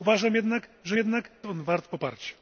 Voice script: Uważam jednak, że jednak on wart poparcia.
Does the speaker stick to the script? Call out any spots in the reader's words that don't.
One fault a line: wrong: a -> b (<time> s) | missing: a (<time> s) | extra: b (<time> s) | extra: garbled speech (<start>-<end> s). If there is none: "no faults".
no faults